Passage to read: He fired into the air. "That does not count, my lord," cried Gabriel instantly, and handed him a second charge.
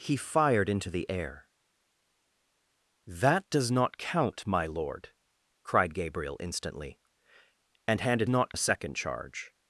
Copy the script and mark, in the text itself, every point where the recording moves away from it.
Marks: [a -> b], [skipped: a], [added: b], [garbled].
He fired into the air. "That does not count, my lord," cried Gabriel instantly, and handed [him -> not] a second charge.